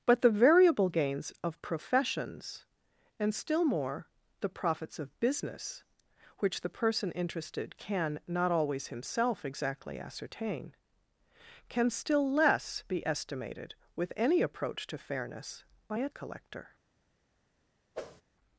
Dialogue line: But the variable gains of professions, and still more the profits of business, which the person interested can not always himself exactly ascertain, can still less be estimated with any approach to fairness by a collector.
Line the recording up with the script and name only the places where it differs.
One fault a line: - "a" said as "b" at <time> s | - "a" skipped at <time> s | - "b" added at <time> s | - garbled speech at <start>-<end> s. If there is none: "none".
none